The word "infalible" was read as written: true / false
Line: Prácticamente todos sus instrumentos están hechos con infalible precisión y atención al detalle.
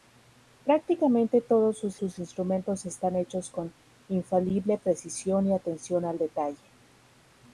true